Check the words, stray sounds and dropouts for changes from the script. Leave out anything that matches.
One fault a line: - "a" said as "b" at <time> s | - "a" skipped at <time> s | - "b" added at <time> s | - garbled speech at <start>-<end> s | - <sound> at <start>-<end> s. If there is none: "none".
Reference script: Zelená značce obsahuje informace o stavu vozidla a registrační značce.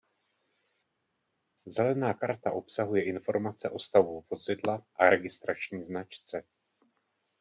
- "značce" said as "karta" at 2.1 s